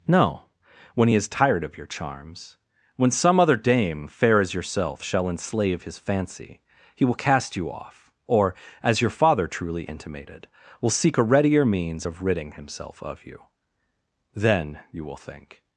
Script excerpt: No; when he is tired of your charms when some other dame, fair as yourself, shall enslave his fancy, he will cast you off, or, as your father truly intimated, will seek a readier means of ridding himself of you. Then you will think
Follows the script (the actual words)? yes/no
yes